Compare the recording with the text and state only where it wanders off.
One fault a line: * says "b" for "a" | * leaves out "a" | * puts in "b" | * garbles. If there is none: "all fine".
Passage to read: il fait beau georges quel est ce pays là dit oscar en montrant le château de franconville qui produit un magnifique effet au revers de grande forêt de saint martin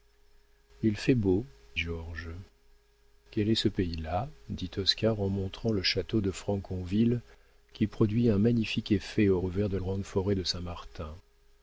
all fine